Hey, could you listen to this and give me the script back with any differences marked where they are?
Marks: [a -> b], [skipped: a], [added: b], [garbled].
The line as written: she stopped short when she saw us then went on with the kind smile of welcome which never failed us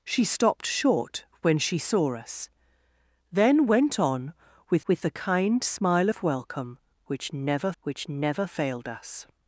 she stopped short when she saw us then went on with [added: with] the kind smile of welcome which never [added: which never] failed us